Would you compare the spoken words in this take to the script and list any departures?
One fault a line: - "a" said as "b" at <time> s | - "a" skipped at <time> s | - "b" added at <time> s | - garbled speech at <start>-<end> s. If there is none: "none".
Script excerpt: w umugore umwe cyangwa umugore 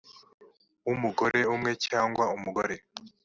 none